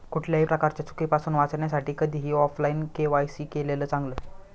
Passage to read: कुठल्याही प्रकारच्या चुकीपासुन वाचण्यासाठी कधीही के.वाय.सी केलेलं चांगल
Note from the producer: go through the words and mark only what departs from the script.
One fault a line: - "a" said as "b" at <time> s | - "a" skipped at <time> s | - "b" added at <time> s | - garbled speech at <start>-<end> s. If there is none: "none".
- "ऑफलाइन" added at 2.3 s